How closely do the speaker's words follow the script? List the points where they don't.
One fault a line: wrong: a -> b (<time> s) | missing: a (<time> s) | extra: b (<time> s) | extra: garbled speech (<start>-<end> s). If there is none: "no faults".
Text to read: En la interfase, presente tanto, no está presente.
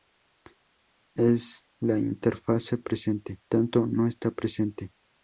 no faults